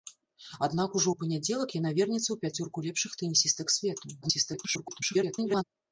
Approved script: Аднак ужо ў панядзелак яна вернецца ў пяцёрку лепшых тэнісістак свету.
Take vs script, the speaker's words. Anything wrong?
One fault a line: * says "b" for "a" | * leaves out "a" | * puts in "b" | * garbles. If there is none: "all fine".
* garbles